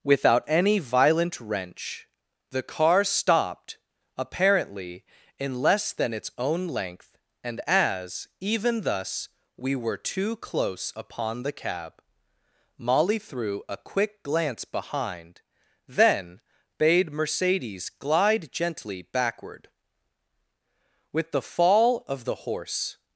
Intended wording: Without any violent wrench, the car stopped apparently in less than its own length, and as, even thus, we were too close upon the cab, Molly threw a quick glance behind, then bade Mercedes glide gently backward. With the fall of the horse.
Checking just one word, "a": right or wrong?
right